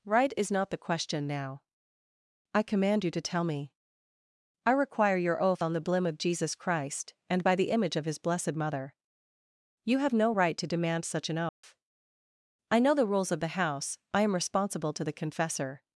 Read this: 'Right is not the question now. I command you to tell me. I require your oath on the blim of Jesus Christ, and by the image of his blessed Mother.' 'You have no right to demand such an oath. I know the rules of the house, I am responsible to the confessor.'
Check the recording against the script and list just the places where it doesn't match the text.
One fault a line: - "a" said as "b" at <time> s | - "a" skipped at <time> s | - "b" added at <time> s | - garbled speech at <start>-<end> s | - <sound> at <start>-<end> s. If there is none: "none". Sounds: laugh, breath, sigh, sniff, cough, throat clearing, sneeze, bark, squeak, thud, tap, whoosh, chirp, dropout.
- dropout at 11.5-11.6 s